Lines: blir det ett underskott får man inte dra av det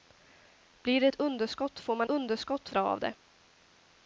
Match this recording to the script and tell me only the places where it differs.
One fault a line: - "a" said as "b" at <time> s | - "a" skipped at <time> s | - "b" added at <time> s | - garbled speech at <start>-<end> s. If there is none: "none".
- "inte" said as "underskott" at 2.1 s